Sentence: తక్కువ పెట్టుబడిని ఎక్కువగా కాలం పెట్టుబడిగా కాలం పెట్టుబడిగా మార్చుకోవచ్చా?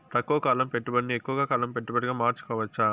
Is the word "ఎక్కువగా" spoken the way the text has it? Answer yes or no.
yes